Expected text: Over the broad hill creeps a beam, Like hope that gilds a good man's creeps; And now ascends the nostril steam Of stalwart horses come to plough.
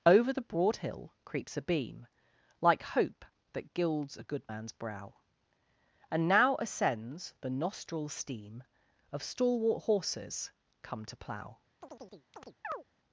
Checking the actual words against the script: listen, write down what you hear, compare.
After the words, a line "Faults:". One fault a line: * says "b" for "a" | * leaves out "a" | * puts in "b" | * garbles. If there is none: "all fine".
Over the broad hill creeps a beam, Like hope that gilds a good man's brow; And now ascends the nostril steam Of stalwart horses come to plough.
Faults:
* says "brow" for "creeps"